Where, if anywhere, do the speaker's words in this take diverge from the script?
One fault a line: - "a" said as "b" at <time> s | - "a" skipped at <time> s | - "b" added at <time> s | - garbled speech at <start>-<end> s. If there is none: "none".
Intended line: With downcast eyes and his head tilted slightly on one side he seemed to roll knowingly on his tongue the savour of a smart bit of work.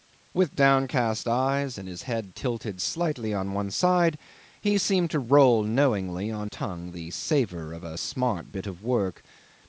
- "his" skipped at 6.5 s